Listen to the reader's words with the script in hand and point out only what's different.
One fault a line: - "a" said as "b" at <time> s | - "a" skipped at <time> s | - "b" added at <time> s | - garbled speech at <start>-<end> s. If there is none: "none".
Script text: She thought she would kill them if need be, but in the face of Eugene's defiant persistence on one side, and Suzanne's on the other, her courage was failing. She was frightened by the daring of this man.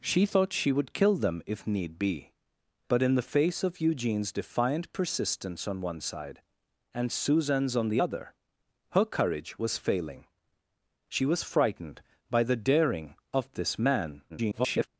- garbled speech at 14.3-14.9 s